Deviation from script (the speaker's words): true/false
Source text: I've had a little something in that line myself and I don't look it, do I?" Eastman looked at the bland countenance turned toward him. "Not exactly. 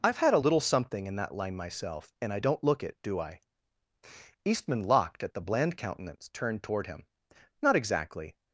true